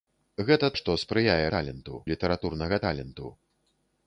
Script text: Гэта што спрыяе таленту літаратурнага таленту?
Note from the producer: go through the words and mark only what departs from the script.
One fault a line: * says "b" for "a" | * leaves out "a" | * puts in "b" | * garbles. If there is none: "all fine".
all fine